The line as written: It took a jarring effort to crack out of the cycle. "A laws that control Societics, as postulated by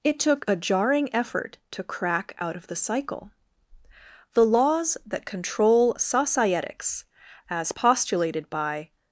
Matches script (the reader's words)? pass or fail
fail